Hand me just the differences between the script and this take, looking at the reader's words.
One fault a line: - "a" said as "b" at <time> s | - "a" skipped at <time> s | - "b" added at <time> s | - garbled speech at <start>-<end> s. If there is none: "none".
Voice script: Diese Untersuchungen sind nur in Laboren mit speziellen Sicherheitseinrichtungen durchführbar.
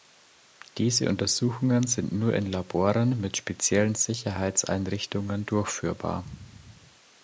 none